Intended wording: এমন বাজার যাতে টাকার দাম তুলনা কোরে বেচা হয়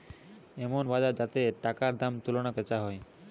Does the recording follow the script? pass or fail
fail